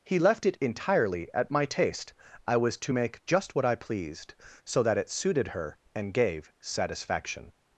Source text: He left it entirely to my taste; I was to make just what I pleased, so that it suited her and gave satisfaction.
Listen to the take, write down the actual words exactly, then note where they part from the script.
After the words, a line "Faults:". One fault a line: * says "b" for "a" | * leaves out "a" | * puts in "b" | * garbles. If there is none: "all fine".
He left it entirely at my taste; I was to make just what I pleased, so that it suited her and gave satisfaction.
Faults:
* says "at" for "to"